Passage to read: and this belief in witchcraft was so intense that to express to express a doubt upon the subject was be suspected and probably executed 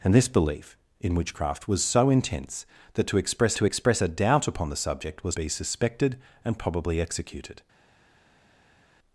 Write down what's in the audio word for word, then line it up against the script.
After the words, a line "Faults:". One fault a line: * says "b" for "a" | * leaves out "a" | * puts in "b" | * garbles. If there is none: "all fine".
and this belief in witchcraft was so intense that to express to express a doubt upon the subject was be suspected and probably executed
Faults:
all fine